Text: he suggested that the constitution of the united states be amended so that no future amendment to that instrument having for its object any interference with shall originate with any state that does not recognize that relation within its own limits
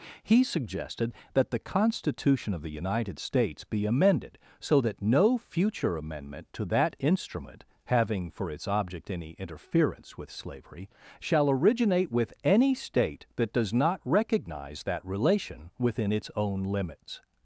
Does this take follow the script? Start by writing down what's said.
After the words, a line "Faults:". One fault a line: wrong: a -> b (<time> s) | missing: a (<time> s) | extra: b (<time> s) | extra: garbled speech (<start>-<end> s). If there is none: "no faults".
he suggested that the constitution of the united states be amended so that no future amendment to that instrument having for its object any interference with slavery shall originate with any state that does not recognize that relation within its own limits
Faults:
extra: slavery (10.3 s)